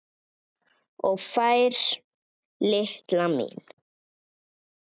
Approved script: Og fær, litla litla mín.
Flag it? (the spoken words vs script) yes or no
yes